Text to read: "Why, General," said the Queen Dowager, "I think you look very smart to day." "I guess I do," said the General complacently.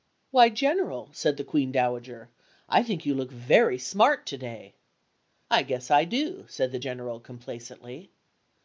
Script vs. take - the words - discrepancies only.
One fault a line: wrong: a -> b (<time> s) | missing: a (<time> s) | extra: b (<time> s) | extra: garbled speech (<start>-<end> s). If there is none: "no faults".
no faults